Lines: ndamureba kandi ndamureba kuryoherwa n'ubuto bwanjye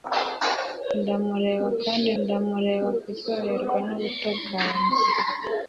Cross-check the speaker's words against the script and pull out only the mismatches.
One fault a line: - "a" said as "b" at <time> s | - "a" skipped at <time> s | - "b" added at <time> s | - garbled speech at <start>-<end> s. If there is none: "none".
none